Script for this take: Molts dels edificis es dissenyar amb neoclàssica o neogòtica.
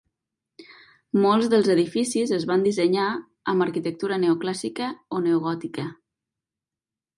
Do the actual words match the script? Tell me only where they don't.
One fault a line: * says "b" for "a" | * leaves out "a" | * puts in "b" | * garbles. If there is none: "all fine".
* puts in "van"
* puts in "arquitectura"